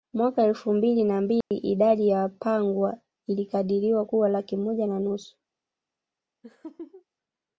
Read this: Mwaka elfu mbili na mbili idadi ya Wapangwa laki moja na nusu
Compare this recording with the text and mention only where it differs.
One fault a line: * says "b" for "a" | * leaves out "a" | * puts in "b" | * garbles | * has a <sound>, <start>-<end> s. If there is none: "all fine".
* has a dropout, 1.4-1.5 s
* puts in "ilikadiriwa kuwa"
* has a laugh, 6.4-7.0 s